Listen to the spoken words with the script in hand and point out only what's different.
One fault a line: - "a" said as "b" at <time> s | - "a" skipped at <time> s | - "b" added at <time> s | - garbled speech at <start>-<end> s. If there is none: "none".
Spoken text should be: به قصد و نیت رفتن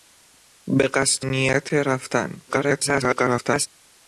- "و" skipped at 1.2 s
- garbled speech at 2.5-3.7 s